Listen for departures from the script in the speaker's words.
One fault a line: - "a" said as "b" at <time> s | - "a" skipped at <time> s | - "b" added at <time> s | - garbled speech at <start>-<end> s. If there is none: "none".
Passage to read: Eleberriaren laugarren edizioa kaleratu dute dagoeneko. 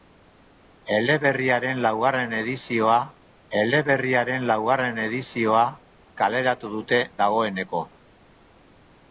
- "eleberriaren laugarren edizioa" added at 3.6 s